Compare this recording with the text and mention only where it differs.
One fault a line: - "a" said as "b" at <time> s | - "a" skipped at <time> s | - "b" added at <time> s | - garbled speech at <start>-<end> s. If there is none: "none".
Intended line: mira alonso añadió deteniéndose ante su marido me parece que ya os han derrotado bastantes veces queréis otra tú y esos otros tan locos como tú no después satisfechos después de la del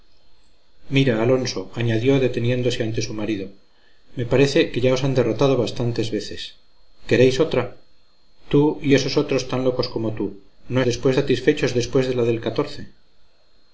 none